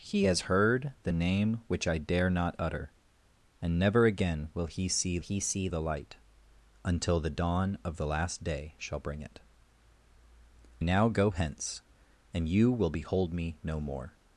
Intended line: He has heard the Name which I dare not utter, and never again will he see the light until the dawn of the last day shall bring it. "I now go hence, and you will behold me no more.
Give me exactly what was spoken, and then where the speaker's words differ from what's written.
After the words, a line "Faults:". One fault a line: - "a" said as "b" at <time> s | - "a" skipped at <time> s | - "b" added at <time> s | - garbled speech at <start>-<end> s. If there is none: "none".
He has heard the Name which I dare not utter, and never again will he see he see the light until the dawn of the last day shall bring it. "now go hence, and you will behold me no more.
Faults:
- "he see" added at 5.2 s
- "I" skipped at 9.4 s